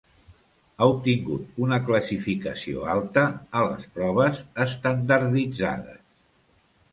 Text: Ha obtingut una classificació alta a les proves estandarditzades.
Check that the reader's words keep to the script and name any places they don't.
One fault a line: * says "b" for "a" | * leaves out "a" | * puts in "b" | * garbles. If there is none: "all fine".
all fine